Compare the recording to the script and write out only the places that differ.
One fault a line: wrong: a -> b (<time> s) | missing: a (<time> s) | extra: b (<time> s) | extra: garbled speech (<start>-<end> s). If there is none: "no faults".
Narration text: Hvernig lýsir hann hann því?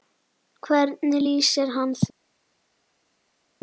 missing: hann (1.9 s)